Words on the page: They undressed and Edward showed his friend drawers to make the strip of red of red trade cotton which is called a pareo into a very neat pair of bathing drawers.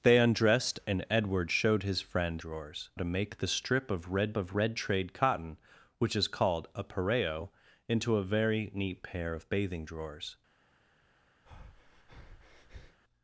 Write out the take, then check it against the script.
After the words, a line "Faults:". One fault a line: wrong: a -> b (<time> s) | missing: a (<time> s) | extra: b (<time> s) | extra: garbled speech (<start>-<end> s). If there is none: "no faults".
They undressed and Edward showed his friend drawers to make the strip of red of red trade cotton which is called a pareo into a very neat pair of bathing drawers.
Faults:
no faults